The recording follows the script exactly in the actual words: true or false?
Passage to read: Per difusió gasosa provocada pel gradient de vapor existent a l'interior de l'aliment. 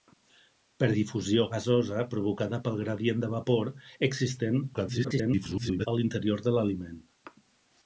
false